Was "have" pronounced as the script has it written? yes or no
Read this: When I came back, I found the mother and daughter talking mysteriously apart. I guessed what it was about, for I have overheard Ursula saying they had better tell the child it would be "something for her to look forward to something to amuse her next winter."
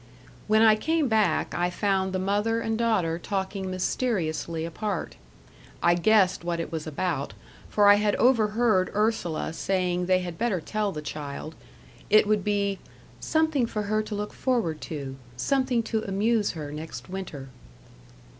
no